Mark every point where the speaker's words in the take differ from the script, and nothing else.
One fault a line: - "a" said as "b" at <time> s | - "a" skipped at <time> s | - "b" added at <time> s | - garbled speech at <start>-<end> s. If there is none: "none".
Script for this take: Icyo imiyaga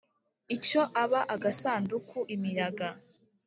- "aba agasanduku" added at 1.0 s